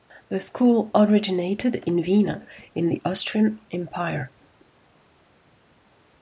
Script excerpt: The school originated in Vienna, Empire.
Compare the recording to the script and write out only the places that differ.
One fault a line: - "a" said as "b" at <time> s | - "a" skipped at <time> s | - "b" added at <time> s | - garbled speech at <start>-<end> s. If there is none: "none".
- "in the Austrian" added at 2.7 s